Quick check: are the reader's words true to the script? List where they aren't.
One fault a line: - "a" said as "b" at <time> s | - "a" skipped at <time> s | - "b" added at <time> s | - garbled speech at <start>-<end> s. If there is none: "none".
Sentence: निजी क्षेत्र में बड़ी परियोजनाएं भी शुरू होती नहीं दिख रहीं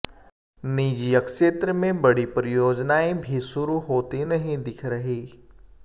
none